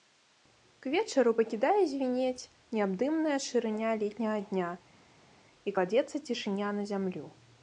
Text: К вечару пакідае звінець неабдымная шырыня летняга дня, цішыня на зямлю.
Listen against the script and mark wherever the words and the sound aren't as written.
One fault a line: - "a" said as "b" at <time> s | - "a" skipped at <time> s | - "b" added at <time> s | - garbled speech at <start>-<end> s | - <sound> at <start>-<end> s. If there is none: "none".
- "і кладзецца" added at 5.7 s